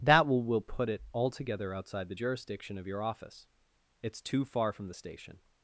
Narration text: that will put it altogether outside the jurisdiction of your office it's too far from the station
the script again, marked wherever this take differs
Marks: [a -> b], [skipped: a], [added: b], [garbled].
that will [added: will] put it altogether outside the jurisdiction of your office it's too far from the station